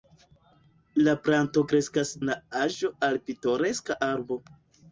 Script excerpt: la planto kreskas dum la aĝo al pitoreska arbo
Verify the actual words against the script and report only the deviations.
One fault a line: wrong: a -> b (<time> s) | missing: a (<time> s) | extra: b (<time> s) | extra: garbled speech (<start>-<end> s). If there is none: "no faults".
missing: dum (2.1 s)